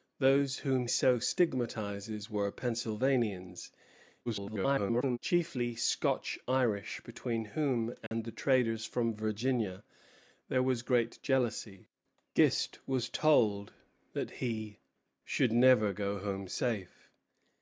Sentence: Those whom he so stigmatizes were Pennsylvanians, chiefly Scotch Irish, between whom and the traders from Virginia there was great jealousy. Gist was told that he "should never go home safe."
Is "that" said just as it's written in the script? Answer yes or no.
yes